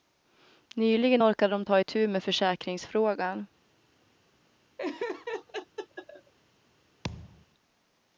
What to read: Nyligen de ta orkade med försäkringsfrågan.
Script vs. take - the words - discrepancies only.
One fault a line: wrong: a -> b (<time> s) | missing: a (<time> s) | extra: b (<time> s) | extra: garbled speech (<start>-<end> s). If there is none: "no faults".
extra: orkade (1.2 s)
wrong: orkade -> itu (1.8 s)